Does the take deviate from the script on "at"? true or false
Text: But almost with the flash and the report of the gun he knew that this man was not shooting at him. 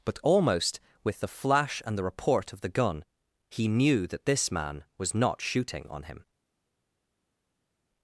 true